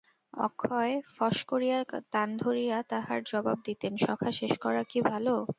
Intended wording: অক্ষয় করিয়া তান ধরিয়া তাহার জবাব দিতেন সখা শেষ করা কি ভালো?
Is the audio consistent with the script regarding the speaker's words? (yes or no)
no